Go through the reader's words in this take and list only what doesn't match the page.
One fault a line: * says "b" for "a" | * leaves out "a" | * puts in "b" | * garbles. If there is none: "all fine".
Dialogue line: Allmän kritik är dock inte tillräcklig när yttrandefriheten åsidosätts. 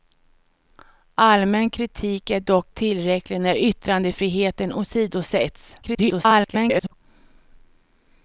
* leaves out "inte"
* garbles